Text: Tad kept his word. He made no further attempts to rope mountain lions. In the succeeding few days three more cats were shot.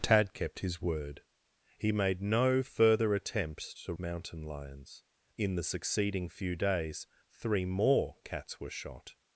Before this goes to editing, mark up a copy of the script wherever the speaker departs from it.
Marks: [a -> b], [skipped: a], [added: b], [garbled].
Tad kept his word. He made no further attempts to [skipped: rope] mountain lions. In the succeeding few days three more cats were shot.